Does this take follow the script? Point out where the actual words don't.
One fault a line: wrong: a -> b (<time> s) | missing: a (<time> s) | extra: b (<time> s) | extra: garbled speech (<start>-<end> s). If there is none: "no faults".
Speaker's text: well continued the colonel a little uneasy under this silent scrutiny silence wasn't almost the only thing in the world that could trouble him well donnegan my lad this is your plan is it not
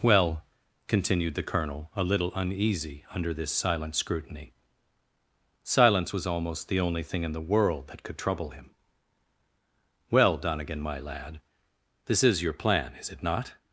wrong: wasn't -> was (6.1 s)